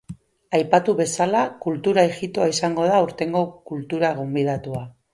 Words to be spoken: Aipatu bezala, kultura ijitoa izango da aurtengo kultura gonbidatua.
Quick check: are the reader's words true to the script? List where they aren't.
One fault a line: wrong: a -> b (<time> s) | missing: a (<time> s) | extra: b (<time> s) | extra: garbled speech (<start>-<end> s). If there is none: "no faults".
no faults